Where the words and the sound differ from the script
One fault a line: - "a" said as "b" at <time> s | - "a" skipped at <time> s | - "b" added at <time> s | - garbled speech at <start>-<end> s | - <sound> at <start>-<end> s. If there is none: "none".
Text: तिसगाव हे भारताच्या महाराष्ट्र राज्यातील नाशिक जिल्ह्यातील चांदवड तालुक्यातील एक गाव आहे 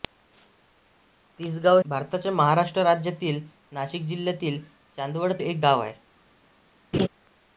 - "हे" skipped at 1.8 s
- "तालुक्यातील" skipped at 5.3 s
- laugh at 6.9-7.1 s